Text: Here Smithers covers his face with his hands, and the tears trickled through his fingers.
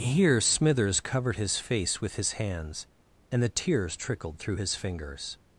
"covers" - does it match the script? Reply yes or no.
no